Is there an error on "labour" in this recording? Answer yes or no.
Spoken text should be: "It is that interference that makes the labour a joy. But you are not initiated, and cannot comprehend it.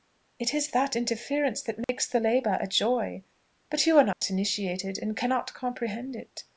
no